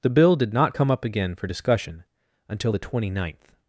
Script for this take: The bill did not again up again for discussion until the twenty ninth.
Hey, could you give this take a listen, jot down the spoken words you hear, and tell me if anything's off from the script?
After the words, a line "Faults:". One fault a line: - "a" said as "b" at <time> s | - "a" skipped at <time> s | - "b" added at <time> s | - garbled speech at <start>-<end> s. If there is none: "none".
The bill did not come up again for discussion until the twenty ninth.
Faults:
- "again" said as "come" at 0.7 s